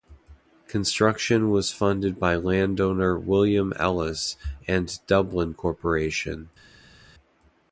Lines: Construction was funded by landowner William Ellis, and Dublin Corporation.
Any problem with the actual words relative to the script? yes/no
no